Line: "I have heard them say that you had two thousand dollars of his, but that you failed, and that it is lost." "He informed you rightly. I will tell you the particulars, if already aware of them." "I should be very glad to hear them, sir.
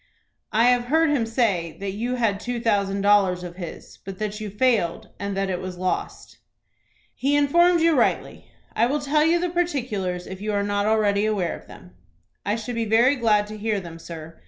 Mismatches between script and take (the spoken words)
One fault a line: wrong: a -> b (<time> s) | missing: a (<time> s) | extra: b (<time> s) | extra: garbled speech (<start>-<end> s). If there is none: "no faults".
wrong: them -> him (1.1 s)
wrong: is -> was (5.6 s)
extra: you are not (10.4 s)